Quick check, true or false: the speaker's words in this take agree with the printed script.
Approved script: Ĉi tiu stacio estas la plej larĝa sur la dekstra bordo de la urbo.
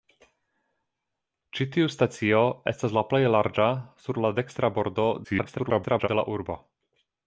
false